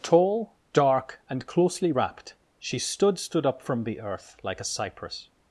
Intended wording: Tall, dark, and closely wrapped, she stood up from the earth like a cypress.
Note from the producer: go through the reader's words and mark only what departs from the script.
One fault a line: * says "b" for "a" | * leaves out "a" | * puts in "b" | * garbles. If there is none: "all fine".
* puts in "stood"